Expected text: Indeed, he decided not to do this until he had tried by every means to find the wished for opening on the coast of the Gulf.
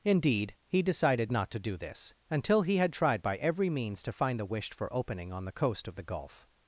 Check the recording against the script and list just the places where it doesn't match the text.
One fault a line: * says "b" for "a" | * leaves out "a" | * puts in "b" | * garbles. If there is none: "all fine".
all fine